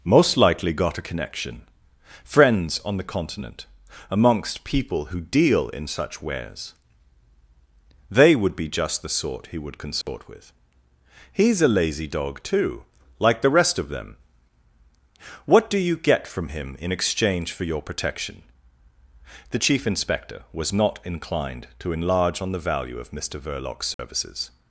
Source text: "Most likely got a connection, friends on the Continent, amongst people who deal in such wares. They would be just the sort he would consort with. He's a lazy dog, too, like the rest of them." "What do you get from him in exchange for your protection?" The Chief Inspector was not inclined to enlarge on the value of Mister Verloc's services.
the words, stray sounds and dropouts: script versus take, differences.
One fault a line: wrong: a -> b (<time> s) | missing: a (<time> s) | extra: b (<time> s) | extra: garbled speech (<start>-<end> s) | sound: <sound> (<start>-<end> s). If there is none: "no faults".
sound: dropout (10.0-10.1 s)
sound: dropout (23.9-24.0 s)